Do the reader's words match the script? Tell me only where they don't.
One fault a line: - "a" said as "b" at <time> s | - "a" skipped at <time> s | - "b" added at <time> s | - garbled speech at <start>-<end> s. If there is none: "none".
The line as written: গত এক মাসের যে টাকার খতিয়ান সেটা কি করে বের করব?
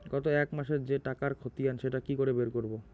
none